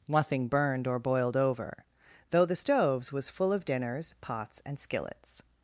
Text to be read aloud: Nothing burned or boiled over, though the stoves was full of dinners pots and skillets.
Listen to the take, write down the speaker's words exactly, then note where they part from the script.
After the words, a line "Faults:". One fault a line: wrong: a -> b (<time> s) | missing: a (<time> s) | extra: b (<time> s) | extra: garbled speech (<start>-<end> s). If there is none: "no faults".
Nothing burned or boiled over, though the stoves was full of dinners pots and skillets.
Faults:
no faults